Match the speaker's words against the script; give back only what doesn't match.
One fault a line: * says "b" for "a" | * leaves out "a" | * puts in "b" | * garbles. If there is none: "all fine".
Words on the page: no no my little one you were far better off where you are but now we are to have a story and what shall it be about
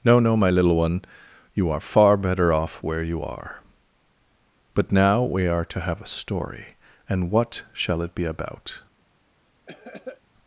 * says "are" for "were"